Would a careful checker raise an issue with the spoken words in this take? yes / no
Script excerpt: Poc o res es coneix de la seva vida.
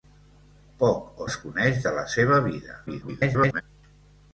yes